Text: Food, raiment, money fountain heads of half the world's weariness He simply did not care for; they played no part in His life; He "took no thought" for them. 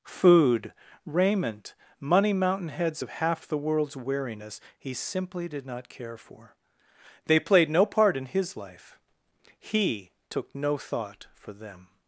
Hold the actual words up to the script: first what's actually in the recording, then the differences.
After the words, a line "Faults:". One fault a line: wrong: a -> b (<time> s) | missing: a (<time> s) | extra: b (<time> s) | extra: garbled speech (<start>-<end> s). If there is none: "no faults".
Food, raiment, money mountain heads of half the world's weariness He simply did not care for; they played no part in His life; He "took no thought" for them.
Faults:
wrong: fountain -> mountain (2.3 s)